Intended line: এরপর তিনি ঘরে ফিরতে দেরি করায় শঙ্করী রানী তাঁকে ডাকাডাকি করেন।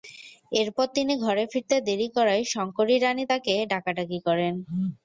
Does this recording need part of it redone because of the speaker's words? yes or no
no